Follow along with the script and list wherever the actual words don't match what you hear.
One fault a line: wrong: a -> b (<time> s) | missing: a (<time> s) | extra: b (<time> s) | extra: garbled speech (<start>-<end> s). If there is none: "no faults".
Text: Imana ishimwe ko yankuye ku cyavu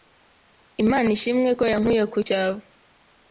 no faults